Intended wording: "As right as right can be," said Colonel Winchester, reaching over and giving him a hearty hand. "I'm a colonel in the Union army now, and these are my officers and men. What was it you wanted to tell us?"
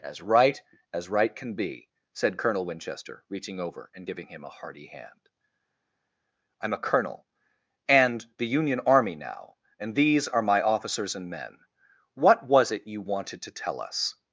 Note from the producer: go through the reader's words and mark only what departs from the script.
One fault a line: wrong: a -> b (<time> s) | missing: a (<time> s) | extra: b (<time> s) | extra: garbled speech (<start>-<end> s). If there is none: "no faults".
wrong: in -> and (7.9 s)